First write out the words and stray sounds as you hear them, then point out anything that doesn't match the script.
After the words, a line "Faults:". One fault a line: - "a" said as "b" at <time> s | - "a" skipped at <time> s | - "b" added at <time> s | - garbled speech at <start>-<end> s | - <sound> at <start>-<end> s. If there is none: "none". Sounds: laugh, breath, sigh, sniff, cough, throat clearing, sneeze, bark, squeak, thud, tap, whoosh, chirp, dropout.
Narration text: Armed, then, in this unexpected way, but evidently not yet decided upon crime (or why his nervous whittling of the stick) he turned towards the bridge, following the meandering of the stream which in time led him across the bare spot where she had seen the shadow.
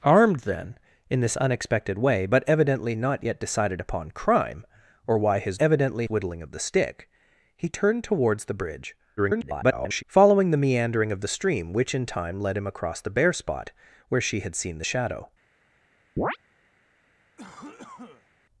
Armed, then, in this unexpected way, but evidently not yet decided upon crime (or why his evidently whittling of the stick) he turned towards the bridge, [garbled] following the meandering of the stream which in time led him across the bare spot where she had seen the shadow.
Faults:
- "nervous" said as "evidently" at 5.6 s
- garbled speech at 9.2-10.0 s
- chirp at 16.2-16.4 s
- cough at 17.4-18.3 s